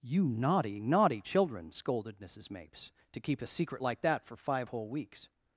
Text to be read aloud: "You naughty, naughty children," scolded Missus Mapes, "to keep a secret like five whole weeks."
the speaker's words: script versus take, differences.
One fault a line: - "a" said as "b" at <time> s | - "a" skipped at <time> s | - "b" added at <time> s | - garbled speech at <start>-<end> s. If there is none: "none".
- "that for" added at 4.0 s